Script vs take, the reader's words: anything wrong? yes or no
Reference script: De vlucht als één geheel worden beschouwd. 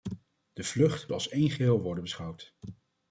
no